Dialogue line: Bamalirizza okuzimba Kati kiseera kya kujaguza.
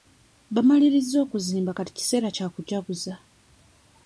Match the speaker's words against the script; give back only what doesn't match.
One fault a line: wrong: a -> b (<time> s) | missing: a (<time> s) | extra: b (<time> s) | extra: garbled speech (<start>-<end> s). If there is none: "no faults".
no faults